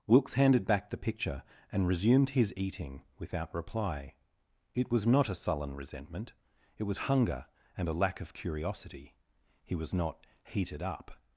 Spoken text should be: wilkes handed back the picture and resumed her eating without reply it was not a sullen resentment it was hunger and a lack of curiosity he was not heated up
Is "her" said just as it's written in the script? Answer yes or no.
no